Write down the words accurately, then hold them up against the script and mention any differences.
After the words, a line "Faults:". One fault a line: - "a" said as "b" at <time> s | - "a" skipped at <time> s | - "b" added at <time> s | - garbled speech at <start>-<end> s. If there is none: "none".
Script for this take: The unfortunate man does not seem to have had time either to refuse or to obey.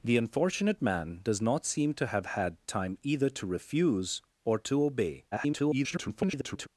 The unfortunate man does not seem to have had time either to refuse or to obey. [garbled]
Faults:
- garbled speech at 5.3-6.7 s